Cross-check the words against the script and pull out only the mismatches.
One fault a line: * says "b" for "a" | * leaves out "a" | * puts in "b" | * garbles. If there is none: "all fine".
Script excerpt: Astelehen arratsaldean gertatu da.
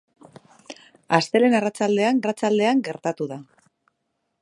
* puts in "arratsaldean"